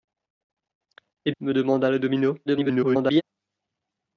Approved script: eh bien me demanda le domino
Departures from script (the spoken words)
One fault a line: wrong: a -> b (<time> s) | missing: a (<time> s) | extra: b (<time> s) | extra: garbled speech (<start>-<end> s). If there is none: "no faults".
missing: bien (1.3 s)
extra: garbled speech (2.5-3.2 s)